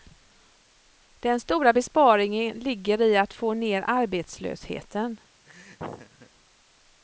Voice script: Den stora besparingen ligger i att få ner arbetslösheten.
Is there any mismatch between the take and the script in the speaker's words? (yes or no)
no